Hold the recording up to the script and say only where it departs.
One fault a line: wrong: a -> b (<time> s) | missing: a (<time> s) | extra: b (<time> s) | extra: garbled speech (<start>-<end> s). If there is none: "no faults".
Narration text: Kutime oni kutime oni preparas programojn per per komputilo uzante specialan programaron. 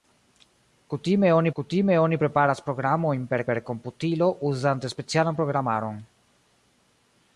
no faults